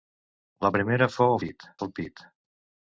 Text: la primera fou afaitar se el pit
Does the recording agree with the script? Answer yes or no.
no